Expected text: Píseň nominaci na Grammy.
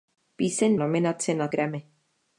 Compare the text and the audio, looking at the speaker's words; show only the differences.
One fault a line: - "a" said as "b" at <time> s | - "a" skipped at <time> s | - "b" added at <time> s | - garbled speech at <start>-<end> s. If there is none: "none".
none